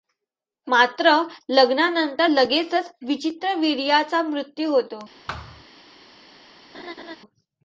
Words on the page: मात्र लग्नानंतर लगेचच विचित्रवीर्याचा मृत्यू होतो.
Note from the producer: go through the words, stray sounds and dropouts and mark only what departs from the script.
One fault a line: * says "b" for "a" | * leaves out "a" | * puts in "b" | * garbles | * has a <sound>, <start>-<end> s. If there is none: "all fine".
* has a thud, 5.3-5.6 s
* has a laugh, 6.7-7.2 s